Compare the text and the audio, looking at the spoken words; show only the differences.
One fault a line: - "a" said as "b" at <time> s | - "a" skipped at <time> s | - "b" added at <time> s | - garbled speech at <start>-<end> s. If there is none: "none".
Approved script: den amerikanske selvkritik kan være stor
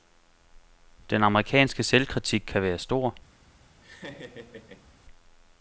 none